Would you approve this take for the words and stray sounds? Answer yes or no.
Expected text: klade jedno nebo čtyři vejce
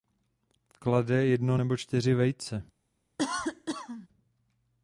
no